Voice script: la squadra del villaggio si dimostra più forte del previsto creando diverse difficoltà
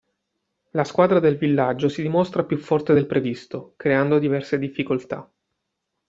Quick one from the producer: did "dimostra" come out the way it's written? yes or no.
yes